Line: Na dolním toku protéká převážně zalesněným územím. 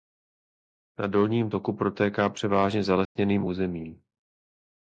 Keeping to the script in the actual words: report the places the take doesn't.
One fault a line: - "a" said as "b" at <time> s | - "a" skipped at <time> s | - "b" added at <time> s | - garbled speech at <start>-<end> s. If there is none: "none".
none